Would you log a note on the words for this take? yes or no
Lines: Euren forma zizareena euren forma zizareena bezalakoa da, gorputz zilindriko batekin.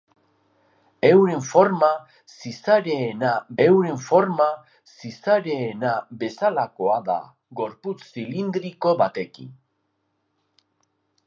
no